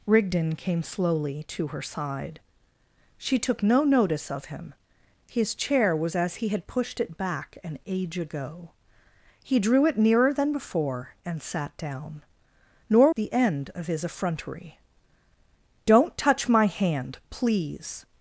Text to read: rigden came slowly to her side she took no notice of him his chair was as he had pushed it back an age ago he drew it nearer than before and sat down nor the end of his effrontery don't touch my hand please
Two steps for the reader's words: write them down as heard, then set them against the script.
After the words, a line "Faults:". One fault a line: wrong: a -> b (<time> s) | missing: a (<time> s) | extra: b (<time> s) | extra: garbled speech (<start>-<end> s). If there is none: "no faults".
rigden came slowly to her side she took no notice of him his chair was as he had pushed it back an age ago he drew it nearer than before and sat down nor the end of his effrontery don't touch my hand please
Faults:
no faults